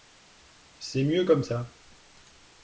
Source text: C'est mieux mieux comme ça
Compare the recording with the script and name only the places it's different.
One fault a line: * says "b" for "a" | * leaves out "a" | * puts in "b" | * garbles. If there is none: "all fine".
* leaves out "mieux"